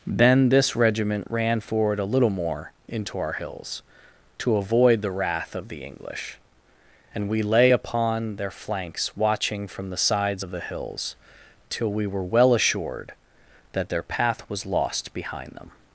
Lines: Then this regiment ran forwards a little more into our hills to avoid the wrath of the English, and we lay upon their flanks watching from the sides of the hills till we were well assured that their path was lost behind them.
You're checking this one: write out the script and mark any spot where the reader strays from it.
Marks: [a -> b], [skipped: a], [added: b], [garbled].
Then this regiment ran [forwards -> forward] a little more into our hills to avoid the wrath of the English, and we lay upon their flanks watching from the sides of the hills till we were well assured that their path was lost behind them.